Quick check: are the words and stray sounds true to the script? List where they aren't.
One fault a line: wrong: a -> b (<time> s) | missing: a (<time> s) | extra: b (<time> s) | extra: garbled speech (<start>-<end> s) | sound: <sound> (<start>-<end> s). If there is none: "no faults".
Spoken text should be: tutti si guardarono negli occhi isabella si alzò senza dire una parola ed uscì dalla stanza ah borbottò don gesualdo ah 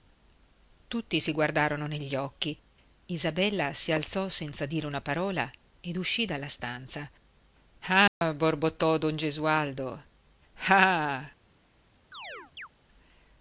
sound: dropout (8.1-8.2 s)
sound: chirp (12.1-12.7 s)